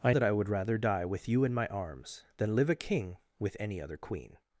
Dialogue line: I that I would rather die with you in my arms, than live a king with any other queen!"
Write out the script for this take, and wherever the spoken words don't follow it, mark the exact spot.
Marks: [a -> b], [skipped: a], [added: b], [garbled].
I that I would rather die with you in my arms, than live a king with any other queen!"